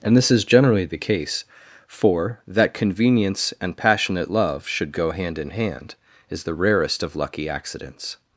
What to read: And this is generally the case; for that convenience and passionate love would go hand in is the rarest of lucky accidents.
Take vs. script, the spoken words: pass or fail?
fail